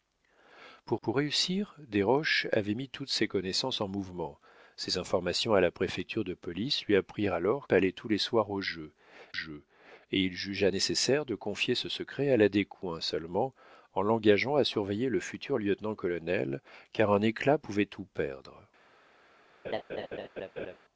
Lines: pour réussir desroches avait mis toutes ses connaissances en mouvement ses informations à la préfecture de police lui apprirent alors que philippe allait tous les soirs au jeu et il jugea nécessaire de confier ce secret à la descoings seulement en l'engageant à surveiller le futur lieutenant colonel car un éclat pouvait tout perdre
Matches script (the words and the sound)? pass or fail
fail